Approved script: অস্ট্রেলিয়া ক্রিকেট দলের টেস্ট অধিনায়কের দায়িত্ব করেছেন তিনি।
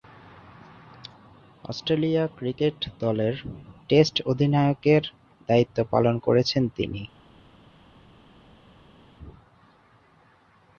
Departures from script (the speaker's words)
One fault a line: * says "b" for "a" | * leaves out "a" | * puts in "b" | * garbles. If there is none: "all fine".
* puts in "পালন"